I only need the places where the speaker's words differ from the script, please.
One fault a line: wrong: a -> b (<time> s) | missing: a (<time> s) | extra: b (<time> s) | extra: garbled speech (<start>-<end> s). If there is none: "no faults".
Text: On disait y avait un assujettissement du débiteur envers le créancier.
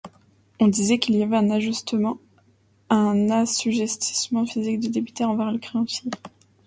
extra: qu'il (1.0 s)
extra: physique (4.4 s)